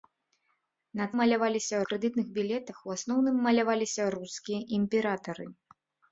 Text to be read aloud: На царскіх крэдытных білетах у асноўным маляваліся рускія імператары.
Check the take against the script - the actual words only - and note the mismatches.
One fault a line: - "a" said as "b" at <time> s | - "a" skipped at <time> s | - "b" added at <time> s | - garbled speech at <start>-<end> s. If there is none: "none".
- "царскіх" said as "маляваліся" at 1.2 s